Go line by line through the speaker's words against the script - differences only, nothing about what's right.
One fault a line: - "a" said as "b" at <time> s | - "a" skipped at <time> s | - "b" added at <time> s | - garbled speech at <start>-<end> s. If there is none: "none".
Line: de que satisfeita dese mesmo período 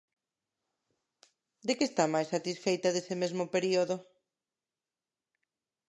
- "está máis" added at 1.9 s